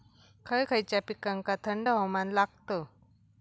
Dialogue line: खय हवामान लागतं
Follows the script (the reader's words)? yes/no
no